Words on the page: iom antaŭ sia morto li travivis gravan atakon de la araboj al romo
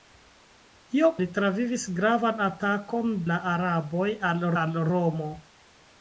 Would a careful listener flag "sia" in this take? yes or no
yes